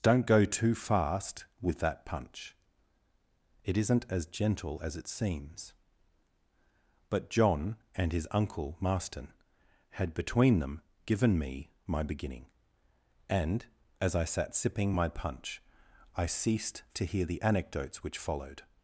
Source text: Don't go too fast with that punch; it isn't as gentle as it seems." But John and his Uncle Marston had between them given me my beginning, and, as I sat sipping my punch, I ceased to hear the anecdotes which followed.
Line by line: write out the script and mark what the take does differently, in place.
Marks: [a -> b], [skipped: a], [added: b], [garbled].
Don't go too fast with that punch; it isn't as gentle as it seems." But John and his Uncle Marston had between them given me my beginning, and, as I sat sipping my punch, I ceased to hear the anecdotes which followed.